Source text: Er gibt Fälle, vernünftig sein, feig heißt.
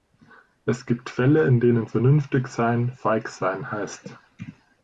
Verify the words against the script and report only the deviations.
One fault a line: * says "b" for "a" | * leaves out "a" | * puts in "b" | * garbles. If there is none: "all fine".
* says "Es" for "Er"
* puts in "in denen"
* puts in "sein"